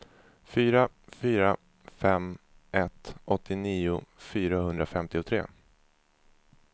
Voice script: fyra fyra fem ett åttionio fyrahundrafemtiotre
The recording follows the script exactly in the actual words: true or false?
true